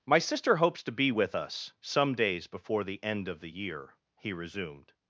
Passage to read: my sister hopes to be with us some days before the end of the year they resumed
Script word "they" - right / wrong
wrong